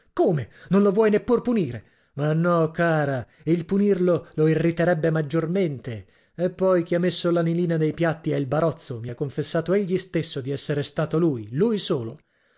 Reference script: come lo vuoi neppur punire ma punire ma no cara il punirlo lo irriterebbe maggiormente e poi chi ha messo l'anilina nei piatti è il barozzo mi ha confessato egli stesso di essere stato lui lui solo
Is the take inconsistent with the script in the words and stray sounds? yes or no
yes